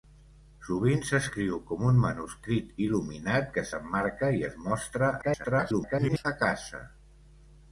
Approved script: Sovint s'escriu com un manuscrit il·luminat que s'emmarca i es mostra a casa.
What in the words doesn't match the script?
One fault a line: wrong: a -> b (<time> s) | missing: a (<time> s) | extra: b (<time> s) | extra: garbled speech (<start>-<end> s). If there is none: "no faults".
extra: garbled speech (5.2-6.3 s)